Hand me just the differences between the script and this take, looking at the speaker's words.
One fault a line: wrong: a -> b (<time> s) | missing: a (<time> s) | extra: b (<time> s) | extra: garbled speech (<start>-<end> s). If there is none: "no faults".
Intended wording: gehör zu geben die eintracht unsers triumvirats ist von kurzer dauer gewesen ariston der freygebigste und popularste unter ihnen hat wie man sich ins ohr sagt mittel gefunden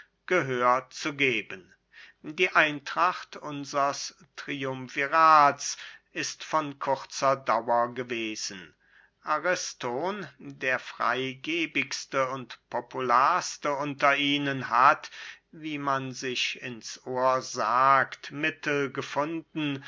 no faults